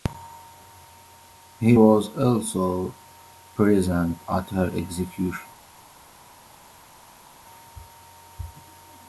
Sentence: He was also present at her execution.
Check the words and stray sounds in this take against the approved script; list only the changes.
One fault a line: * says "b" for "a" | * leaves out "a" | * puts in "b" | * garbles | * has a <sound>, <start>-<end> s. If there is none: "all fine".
all fine